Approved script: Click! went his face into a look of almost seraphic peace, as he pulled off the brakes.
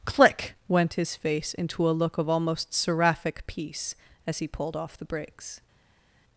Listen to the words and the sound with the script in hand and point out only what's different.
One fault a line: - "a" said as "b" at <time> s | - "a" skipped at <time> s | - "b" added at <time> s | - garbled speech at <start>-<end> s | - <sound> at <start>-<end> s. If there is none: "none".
none